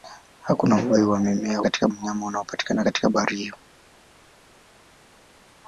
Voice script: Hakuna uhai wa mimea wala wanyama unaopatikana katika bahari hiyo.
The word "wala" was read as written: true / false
false